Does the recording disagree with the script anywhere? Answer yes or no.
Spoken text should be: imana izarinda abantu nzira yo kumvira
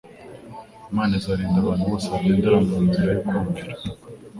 yes